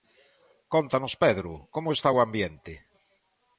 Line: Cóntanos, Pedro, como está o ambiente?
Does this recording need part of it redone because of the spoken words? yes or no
no